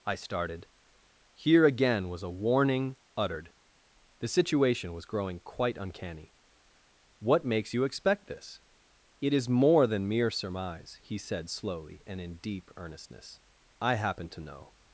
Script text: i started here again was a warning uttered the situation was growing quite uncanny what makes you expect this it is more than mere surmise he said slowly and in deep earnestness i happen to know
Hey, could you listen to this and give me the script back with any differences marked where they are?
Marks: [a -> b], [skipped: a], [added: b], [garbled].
i started here again was a warning uttered the situation was growing quite uncanny what makes you expect this it is more than mere surmise he said slowly and in deep earnestness i happen to know